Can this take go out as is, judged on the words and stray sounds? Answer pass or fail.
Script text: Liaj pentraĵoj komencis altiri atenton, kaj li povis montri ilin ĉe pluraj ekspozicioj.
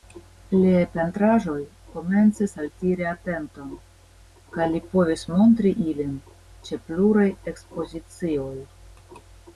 pass